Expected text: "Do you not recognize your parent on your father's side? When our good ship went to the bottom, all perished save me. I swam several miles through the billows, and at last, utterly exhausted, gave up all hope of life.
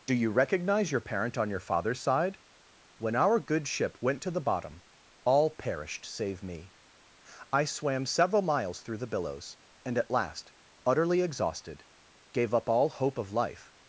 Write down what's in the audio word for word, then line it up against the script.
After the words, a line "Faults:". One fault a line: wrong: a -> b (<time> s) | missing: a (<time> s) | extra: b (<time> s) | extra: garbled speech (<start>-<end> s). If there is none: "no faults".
"Do you recognize your parent on your father's side? When our good ship went to the bottom, all perished save me. I swam several miles through the billows, and at last, utterly exhausted, gave up all hope of life.
Faults:
missing: not (0.3 s)